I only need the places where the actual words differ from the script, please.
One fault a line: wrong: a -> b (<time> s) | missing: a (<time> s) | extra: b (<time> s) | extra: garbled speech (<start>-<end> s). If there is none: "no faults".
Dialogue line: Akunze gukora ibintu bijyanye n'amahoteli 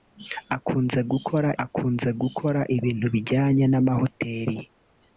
extra: akunze gukora (1.6 s)